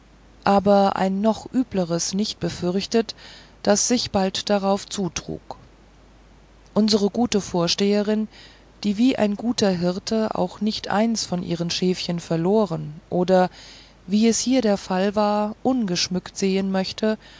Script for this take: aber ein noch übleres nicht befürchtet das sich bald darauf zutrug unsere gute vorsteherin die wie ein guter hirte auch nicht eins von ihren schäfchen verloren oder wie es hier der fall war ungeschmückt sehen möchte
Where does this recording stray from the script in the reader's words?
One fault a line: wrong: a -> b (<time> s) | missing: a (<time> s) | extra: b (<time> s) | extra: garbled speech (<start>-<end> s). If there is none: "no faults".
no faults